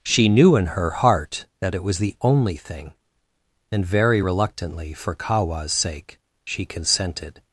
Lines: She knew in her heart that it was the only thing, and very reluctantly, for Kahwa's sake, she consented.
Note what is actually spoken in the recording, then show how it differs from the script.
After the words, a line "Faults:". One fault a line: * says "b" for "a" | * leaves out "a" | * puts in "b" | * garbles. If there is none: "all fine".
She knew in her heart that it was the only thing, and very reluctantly, for Kahwa's sake, she consented.
Faults:
all fine